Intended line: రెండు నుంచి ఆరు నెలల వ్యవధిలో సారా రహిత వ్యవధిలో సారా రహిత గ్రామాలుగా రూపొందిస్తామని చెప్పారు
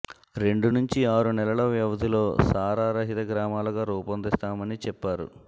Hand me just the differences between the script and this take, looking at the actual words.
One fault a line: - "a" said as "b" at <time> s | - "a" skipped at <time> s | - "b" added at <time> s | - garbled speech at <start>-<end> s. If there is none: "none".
- "వ్యవధిలో సారా రహిత" skipped at 3.3 s